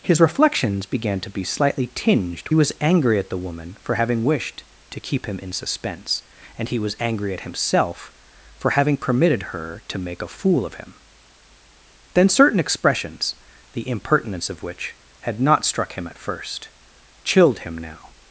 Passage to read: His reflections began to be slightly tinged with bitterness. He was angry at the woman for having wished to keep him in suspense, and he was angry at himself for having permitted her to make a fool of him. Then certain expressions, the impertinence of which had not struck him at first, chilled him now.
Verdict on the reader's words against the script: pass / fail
fail